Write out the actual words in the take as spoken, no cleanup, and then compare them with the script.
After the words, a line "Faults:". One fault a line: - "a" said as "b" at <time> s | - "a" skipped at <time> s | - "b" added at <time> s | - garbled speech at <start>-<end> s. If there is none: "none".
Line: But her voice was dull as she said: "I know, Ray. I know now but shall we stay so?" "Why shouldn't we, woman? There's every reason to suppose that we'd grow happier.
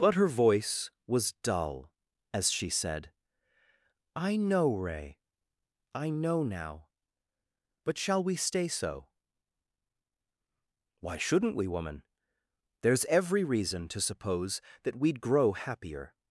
But her voice was dull as she said: "I know, Ray. I know now but shall we stay so?" "Why shouldn't we, woman? There's every reason to suppose that we'd grow happier.
Faults:
none